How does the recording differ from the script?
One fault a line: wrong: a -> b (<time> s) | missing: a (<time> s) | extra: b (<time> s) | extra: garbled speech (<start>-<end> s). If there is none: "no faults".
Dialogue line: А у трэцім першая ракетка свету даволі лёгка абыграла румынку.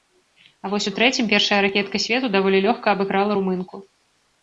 extra: вось (0.7 s)